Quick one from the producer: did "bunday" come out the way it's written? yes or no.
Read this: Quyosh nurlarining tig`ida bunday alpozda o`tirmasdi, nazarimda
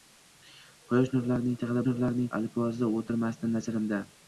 no